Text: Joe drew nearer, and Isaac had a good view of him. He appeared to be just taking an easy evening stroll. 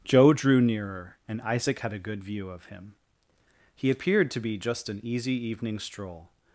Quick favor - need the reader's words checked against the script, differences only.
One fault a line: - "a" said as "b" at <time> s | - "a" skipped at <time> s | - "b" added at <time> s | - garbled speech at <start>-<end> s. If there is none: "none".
- "taking" skipped at 4.9 s